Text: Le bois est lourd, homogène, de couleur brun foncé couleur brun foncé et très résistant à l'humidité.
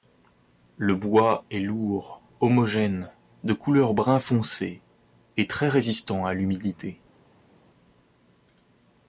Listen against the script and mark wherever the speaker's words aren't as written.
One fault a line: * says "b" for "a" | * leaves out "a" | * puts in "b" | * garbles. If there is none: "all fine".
* leaves out "couleur brun foncé"